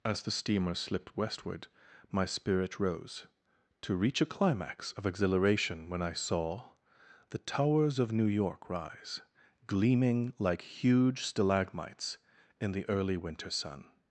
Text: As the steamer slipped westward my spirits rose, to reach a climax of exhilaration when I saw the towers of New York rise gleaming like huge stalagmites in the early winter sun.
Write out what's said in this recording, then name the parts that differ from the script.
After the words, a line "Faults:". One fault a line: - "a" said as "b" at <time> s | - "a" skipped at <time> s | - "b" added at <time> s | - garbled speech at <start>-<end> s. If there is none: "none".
As the steamer slipped westward my spirit rose, to reach a climax of exhilaration when I saw the towers of New York rise gleaming like huge stalagmites in the early winter sun.
Faults:
- "spirits" said as "spirit" at 2.2 s